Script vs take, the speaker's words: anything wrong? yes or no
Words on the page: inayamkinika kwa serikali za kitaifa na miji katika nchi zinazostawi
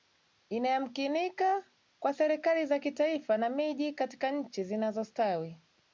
no